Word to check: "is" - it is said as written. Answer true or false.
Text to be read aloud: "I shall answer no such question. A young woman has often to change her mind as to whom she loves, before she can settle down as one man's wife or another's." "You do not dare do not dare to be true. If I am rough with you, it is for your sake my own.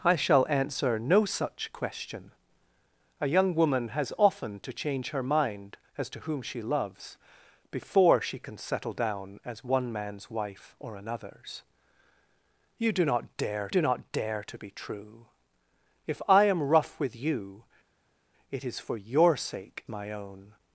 true